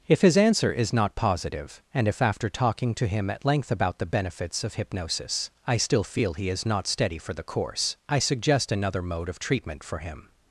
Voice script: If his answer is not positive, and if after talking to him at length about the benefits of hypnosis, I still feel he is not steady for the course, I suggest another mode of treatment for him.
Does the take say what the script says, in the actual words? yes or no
yes